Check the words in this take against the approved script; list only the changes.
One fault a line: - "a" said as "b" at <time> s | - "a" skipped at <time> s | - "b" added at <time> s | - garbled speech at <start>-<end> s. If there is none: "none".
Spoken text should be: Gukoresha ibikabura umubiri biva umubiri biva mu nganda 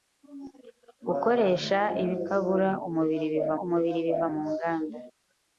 none